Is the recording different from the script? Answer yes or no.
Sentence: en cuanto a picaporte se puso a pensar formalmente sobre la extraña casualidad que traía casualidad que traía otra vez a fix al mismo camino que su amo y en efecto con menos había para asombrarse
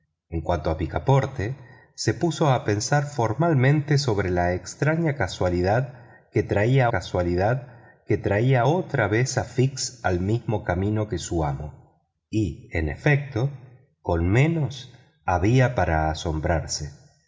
no